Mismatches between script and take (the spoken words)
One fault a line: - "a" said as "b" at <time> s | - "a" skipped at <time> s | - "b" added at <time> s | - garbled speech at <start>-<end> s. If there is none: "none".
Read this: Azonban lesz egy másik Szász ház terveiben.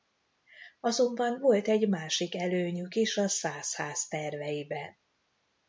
- "lesz" said as "volt" at 1.4 s
- "előnyük is a" added at 2.4 s